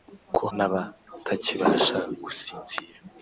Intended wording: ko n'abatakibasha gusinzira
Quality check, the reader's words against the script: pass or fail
pass